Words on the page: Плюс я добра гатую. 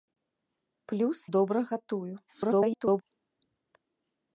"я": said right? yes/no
no